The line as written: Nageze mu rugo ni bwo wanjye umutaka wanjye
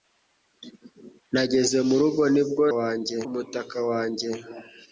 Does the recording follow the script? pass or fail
pass